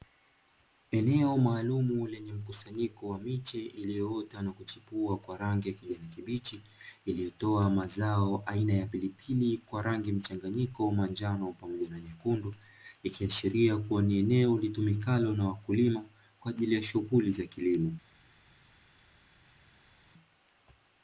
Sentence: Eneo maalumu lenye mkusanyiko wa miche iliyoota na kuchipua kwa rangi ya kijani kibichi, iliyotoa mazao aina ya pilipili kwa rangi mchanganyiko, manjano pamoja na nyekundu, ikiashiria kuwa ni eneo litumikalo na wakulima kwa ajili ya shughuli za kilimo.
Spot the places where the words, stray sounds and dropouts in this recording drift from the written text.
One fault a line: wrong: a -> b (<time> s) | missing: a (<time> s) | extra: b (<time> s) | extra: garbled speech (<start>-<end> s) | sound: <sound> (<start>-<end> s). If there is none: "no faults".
no faults